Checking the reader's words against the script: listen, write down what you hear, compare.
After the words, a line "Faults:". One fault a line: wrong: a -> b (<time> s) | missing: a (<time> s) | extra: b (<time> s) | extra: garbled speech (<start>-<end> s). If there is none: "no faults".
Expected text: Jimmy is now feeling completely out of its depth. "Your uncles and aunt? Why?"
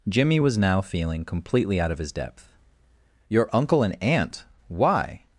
Jimmy was now feeling completely out of his depth. "Your uncle and aunt? Why?"
Faults:
wrong: is -> was (0.4 s)
wrong: its -> his (2.0 s)
wrong: uncles -> uncle (3.5 s)